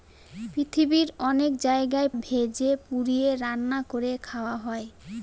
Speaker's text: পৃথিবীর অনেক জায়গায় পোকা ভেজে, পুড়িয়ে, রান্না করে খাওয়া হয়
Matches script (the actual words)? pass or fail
fail